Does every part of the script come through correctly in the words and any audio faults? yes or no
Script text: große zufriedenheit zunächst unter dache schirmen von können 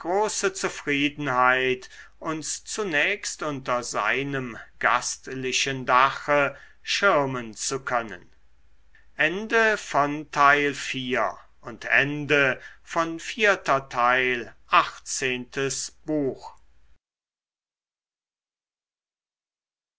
no